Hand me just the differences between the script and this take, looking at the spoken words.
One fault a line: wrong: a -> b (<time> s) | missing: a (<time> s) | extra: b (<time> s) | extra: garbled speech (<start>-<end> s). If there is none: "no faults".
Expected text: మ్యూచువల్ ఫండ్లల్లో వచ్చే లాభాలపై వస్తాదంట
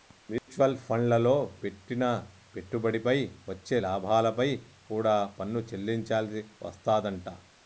extra: పెట్టిన పెట్టుబడిపై (1.6 s)
extra: కూడా పన్ను చెల్లించాల్సి (4.9 s)